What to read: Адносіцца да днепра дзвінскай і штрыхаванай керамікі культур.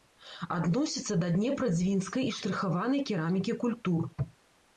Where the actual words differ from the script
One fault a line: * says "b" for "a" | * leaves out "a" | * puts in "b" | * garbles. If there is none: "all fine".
all fine